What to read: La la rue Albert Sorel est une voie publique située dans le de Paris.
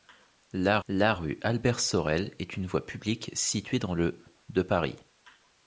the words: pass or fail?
pass